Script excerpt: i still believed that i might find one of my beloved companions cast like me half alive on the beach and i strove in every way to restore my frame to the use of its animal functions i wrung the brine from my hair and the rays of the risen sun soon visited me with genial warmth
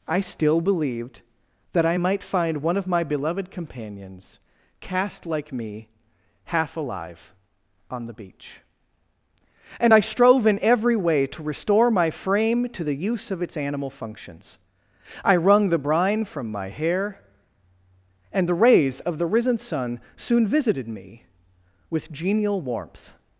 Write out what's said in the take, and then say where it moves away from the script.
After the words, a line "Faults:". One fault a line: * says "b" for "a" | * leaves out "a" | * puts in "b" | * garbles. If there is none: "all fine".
i still believed that i might find one of my beloved companions cast like me half alive on the beach and i strove in every way to restore my frame to the use of its animal functions i wrung the brine from my hair and the rays of the risen sun soon visited me with genial warmth
Faults:
all fine